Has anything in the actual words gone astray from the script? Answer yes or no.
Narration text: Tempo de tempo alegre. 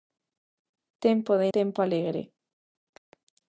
no